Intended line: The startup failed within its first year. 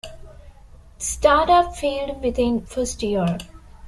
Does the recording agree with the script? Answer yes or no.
no